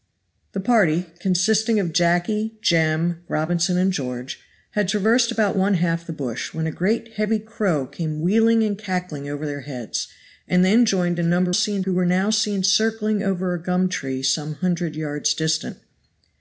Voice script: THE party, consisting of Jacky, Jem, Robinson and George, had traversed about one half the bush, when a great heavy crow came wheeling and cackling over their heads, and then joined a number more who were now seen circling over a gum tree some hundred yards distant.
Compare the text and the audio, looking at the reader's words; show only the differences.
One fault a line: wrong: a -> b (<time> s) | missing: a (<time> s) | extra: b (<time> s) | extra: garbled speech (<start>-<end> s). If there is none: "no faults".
wrong: more -> seen (11.5 s)